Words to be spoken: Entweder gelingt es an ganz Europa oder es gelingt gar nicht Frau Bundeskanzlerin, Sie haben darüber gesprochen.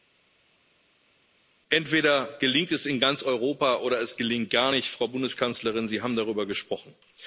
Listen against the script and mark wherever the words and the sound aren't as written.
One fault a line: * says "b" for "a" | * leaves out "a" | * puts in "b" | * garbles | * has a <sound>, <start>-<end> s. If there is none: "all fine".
* says "in" for "an"